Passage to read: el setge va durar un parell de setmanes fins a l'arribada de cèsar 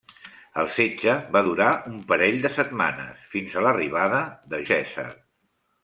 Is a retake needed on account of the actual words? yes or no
no